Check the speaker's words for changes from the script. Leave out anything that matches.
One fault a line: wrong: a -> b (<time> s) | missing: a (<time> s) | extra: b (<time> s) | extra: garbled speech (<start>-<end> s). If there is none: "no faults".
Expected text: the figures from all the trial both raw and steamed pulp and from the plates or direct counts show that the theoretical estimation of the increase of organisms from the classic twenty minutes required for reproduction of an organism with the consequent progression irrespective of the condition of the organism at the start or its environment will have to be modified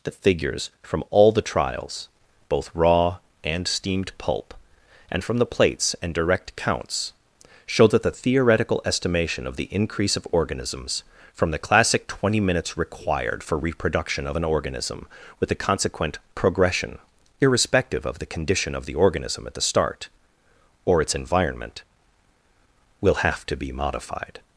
wrong: trial -> trials (1.4 s)
wrong: or -> and (6.0 s)